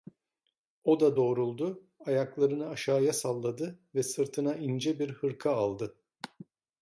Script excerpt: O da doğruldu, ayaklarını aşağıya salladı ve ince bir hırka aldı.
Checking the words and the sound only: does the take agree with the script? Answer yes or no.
no